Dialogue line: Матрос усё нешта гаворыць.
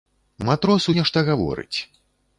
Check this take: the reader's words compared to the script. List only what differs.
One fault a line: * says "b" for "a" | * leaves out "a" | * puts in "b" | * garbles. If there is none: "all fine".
* leaves out "усё"